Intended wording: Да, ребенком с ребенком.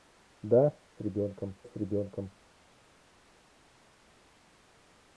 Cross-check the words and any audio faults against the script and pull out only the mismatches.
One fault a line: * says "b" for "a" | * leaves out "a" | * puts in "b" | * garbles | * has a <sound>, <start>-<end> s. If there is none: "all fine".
all fine